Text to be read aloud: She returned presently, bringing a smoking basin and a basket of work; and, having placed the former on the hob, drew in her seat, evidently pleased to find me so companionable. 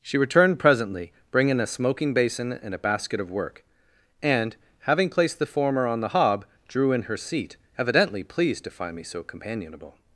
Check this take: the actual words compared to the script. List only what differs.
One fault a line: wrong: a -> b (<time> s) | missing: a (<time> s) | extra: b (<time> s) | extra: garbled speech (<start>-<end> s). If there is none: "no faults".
no faults